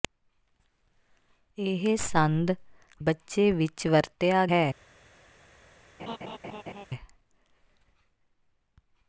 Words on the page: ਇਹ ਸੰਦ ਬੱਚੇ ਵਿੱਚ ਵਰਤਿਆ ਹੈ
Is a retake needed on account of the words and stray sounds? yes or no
yes